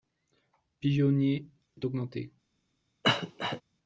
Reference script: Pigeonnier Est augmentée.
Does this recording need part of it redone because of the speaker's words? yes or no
no